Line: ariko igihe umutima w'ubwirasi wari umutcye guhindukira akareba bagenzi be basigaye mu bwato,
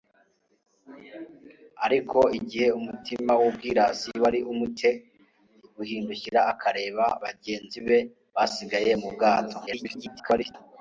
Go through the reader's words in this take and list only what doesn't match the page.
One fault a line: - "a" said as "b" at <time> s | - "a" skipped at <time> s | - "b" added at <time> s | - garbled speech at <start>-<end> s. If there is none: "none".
- garbled speech at 9.7-10.6 s